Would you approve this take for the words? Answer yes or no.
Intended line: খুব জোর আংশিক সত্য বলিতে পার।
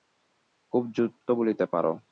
no